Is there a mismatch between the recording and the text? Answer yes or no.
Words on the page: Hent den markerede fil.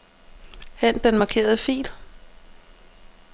no